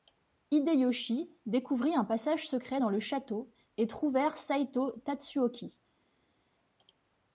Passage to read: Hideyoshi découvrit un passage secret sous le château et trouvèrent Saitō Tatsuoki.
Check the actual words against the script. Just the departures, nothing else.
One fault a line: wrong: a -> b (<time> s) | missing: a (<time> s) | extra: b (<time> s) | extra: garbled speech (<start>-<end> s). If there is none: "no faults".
wrong: sous -> dans (2.8 s)